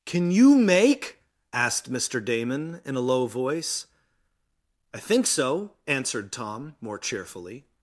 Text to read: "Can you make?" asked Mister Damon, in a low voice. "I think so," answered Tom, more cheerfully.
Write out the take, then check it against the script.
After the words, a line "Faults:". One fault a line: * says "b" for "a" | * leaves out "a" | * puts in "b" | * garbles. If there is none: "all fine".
"Can you make?" asked Mister Damon, in a low voice. "I think so," answered Tom, more cheerfully.
Faults:
all fine